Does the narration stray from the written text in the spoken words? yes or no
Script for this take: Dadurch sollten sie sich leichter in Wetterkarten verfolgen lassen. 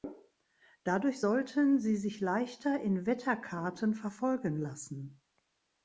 no